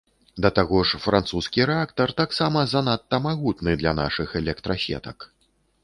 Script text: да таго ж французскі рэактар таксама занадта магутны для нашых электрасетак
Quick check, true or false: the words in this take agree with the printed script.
true